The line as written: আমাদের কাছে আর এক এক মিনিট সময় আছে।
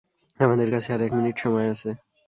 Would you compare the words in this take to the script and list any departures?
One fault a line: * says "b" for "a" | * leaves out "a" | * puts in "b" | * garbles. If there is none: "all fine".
* leaves out "এক"